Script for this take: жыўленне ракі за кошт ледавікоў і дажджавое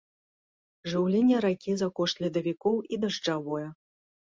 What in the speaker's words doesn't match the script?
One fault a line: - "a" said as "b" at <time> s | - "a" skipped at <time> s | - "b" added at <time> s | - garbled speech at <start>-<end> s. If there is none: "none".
none